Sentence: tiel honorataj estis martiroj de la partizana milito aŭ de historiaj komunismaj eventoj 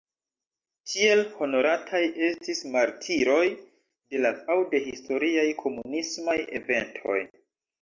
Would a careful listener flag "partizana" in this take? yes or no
yes